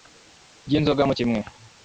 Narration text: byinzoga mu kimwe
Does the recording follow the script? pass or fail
pass